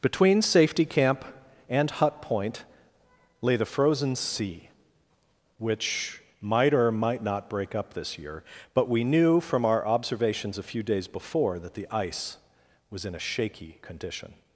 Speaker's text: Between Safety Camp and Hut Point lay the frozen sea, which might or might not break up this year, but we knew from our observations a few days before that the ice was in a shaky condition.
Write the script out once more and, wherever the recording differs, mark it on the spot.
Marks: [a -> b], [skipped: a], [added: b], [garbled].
Between Safety Camp and Hut Point lay the frozen sea, which might or might not break up this year, but we knew from our observations a few days before that the ice was in a shaky condition.